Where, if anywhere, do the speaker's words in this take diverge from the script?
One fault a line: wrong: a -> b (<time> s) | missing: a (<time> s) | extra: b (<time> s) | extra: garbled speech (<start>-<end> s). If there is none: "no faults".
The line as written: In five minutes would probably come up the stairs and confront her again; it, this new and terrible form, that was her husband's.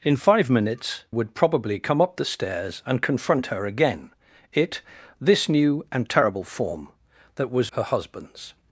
no faults